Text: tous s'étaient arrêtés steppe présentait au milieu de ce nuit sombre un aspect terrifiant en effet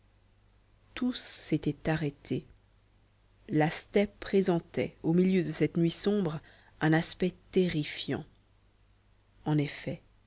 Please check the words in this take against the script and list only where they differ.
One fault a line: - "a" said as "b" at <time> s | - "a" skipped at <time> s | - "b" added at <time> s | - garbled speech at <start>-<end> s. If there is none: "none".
- "la" added at 3.5 s
- "ce" said as "cette" at 5.5 s